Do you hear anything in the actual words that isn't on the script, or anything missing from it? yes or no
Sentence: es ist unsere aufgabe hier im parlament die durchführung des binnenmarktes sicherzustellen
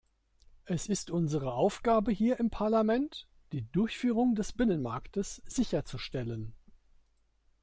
no